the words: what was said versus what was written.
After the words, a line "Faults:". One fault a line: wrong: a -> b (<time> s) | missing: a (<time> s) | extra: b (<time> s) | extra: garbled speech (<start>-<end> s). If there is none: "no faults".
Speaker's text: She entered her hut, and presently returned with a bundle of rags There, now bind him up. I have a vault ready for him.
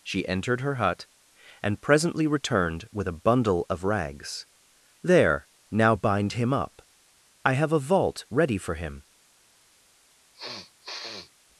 She entered her hut, and presently returned with a bundle of rags There, now bind him up. I have a vault ready for him.
Faults:
no faults